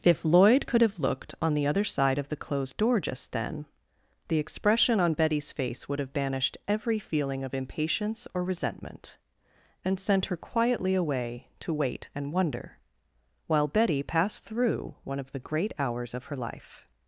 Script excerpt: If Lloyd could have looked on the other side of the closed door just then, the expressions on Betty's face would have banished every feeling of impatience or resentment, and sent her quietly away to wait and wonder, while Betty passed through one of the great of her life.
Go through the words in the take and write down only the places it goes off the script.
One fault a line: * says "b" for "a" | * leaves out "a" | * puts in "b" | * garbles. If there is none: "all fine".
* says "expression" for "expressions"
* puts in "hours"